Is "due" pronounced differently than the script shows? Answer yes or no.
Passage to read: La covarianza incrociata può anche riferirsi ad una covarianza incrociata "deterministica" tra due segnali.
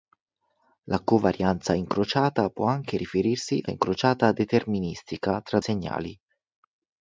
yes